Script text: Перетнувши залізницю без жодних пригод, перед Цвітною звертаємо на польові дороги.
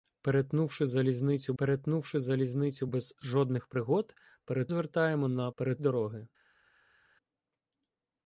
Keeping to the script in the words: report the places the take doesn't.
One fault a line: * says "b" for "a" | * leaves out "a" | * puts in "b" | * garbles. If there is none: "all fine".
* puts in "перетнувши залізницю"
* leaves out "Цвітною"
* says "перед" for "польові"